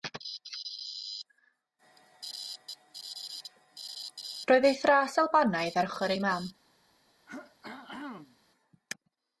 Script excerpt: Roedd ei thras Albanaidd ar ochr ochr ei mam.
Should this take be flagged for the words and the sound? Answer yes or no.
yes